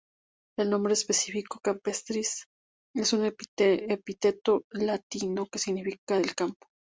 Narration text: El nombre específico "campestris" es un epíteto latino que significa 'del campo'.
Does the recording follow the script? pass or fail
pass